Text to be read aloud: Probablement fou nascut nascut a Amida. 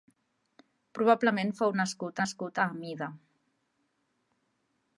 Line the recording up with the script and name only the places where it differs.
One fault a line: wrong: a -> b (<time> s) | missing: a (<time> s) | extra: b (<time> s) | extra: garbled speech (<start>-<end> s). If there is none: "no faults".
no faults